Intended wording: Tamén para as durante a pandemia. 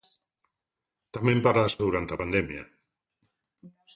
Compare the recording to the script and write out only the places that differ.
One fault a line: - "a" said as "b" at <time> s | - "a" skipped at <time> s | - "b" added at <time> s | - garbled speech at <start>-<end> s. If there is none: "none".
none